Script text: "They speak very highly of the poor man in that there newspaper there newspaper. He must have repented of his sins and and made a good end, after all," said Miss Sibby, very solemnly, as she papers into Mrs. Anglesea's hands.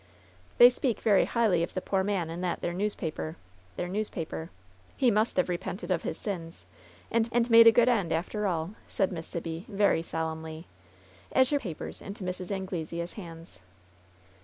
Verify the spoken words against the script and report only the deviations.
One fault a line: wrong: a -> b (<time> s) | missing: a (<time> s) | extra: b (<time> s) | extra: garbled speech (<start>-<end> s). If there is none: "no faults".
no faults